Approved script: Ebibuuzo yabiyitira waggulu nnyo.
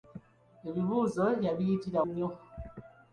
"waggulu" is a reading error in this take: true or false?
true